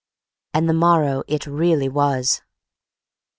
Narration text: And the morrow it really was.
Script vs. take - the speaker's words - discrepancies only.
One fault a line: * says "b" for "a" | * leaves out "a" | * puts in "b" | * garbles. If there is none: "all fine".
all fine